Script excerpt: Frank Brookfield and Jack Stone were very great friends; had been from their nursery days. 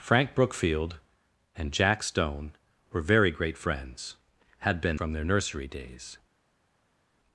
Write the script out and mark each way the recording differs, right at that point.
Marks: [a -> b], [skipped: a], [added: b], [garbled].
Frank Brookfield and Jack Stone were very great friends; had been from their nursery days.